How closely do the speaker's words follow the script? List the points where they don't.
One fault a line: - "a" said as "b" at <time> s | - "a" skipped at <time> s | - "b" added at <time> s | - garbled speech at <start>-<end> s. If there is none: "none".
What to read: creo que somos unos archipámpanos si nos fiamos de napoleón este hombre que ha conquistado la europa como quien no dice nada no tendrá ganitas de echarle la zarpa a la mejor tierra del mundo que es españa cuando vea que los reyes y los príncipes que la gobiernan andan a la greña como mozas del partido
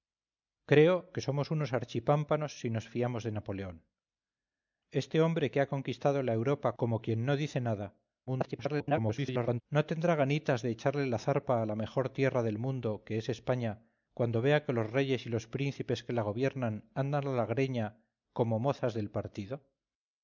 - garbled speech at 8.3-9.6 s